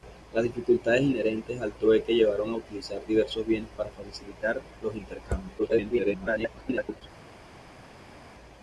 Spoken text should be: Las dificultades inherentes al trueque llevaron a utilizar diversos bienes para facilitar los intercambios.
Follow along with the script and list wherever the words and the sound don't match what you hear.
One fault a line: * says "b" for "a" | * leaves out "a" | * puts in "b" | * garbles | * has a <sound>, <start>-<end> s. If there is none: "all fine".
* garbles